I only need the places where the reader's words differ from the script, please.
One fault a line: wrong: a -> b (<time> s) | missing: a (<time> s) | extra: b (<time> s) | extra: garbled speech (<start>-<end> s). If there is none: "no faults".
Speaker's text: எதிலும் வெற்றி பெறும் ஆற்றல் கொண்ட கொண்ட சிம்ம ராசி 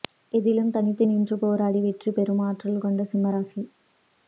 extra: தனித்து நின்று போராடி (0.7 s)
missing: கொண்ட (3.1 s)